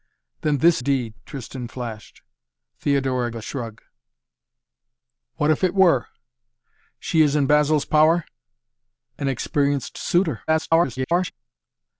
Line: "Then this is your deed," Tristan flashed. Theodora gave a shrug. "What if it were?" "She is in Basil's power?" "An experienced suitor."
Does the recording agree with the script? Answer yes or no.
no